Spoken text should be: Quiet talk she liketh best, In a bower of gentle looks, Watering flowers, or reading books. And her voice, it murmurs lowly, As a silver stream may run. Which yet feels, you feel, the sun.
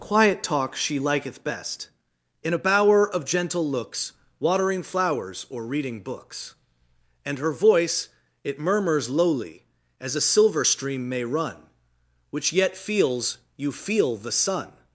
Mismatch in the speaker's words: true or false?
false